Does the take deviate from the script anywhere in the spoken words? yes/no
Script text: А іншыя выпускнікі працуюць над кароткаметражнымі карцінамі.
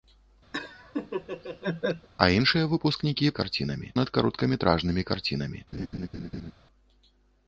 yes